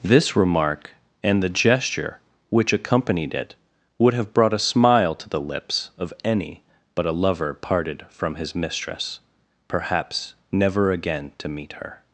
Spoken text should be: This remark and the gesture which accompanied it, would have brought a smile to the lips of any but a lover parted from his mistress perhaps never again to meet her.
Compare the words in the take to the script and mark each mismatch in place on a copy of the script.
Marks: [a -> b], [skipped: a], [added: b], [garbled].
This remark and the gesture which accompanied it, would have brought a smile to the lips of any but a lover parted from his mistress perhaps never again to meet her.